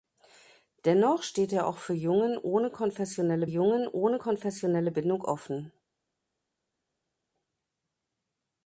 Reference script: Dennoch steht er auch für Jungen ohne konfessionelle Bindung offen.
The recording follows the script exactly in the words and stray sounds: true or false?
false